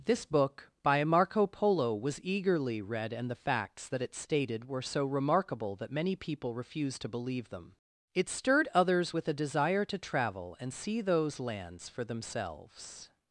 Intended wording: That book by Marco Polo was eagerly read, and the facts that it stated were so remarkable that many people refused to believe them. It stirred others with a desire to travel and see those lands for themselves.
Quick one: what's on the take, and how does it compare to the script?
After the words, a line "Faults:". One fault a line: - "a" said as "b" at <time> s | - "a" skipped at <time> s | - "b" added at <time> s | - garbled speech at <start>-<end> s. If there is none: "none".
This book by Marco Polo was eagerly read, and the facts that it stated were so remarkable that many people refused to believe them. It stirred others with a desire to travel and see those lands for themselves.
Faults:
- "That" said as "This" at 0.0 s